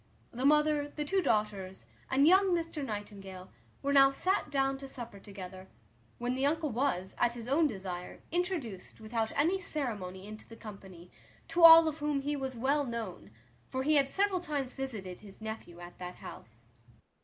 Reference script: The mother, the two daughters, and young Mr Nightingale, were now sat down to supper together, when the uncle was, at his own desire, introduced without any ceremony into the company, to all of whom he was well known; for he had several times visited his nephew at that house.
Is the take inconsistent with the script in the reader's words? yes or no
no